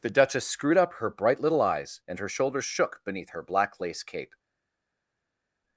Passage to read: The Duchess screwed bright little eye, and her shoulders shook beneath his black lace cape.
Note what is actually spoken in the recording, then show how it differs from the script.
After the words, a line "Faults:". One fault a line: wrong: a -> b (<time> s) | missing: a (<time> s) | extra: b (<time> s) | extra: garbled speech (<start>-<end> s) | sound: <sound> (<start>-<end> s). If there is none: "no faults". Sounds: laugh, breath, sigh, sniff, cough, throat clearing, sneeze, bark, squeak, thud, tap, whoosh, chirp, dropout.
The Duchess screwed up her bright little eyes, and her shoulders shook beneath her black lace cape.
Faults:
extra: up her (0.8 s)
wrong: eye -> eyes (1.6 s)
wrong: his -> her (3.3 s)